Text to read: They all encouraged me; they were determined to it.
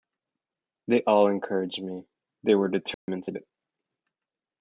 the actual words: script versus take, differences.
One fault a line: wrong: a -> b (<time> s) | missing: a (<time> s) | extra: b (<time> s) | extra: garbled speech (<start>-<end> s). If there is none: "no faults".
no faults